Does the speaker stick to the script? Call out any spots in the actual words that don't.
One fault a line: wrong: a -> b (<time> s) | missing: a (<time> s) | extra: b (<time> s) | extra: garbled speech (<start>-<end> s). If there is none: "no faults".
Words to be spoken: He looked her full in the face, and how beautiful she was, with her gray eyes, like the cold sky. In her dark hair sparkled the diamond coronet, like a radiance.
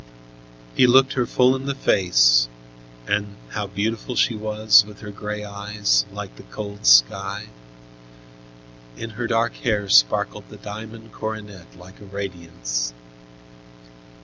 no faults